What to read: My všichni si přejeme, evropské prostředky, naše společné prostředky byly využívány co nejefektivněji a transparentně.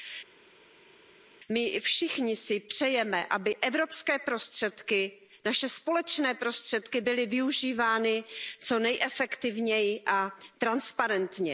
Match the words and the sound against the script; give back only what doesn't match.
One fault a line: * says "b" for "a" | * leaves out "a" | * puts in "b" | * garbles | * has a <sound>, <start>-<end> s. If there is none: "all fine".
* puts in "aby"